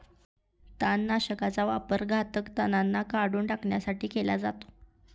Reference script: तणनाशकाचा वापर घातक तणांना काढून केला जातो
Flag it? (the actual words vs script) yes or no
yes